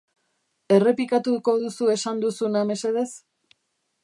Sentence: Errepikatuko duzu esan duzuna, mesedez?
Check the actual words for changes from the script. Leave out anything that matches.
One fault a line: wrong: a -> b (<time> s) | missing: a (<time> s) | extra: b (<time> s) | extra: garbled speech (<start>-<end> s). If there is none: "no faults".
no faults